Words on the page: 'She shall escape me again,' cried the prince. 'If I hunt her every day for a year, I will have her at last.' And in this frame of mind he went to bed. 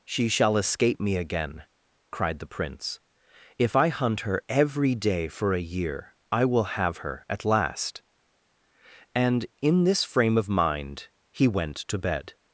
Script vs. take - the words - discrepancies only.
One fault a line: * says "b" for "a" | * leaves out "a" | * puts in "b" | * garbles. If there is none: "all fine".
all fine